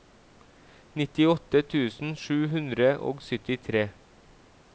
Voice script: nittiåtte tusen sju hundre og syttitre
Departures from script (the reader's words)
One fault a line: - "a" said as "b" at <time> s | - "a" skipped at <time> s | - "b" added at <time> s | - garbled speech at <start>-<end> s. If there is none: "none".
none